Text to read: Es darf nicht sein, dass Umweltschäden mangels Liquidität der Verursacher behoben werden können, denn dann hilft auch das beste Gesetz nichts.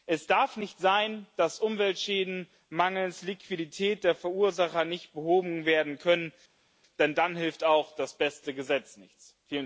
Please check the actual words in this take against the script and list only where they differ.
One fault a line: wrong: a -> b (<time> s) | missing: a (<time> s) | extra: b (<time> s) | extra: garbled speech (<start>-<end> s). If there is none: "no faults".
extra: nicht (4.8 s)